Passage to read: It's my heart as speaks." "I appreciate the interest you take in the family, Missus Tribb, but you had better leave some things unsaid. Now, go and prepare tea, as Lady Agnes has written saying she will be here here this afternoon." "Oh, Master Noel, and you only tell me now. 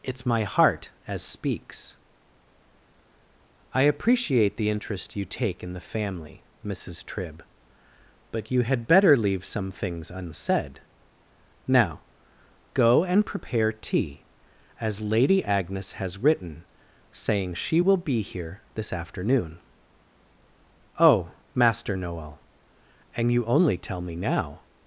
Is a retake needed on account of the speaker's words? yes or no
yes